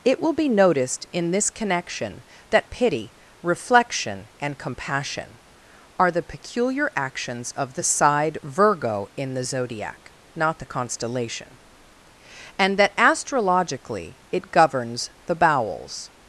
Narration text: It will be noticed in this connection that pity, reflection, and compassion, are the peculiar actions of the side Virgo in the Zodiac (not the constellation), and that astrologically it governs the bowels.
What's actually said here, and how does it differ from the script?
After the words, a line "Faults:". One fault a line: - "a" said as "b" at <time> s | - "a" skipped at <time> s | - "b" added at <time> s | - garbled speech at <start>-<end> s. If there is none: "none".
It will be noticed in this connection that pity, reflection, and compassion, are the peculiar actions of the side Virgo in the Zodiac (not the constellation), and that astrologically it governs the bowels.
Faults:
none